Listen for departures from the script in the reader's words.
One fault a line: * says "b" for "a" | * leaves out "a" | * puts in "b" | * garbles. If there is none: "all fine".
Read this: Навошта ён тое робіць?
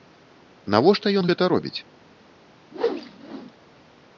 * says "гэта" for "тое"